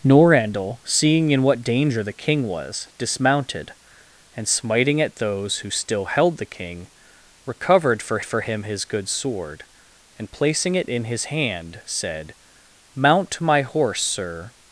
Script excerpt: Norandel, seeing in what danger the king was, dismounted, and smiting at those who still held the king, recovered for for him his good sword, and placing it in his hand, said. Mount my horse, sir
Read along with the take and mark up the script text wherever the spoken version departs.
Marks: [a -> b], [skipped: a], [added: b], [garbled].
Norandel, seeing in what danger the king was, dismounted, and smiting at those who still held the king, recovered for for him his good sword, and placing it in his hand, said. Mount my horse, sir